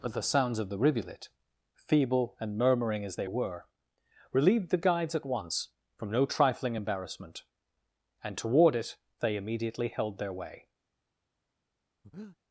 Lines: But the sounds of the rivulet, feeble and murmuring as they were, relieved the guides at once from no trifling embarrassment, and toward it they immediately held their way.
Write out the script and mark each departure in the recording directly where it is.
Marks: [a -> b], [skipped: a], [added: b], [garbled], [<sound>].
But the sounds of the rivulet, feeble and murmuring as they were, relieved the guides at once from no trifling embarrassment, and toward it they immediately held their way. [breath]